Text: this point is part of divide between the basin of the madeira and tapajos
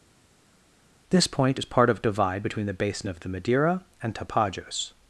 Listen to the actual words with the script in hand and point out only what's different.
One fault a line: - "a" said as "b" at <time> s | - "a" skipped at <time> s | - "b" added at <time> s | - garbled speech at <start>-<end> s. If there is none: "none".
none